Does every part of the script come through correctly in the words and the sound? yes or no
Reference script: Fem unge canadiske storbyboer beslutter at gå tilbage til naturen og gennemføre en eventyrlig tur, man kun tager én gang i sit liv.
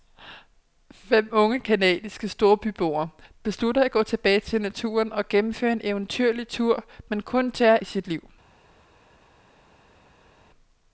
no